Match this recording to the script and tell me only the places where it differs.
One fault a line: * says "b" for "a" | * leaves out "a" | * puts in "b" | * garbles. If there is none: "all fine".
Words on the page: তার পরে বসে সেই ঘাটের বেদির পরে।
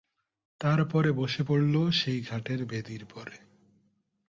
* puts in "পড়ল"